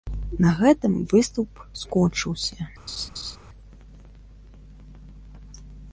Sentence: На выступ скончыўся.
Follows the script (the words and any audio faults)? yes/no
no